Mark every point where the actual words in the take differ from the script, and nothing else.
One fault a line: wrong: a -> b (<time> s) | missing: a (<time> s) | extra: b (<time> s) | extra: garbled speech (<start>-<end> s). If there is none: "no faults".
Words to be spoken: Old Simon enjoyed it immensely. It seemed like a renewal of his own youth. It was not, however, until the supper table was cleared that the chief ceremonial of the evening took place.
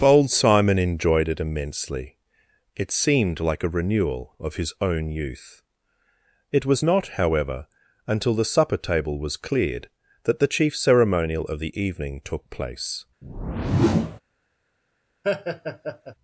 wrong: Old -> Bold (0.0 s)